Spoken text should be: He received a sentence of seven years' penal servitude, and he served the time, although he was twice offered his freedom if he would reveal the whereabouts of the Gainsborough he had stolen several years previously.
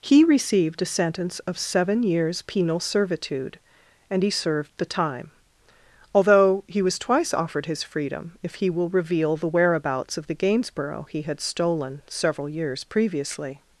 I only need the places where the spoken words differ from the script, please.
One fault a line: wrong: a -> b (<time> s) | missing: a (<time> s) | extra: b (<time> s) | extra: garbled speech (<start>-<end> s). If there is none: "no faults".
wrong: would -> will (8.7 s)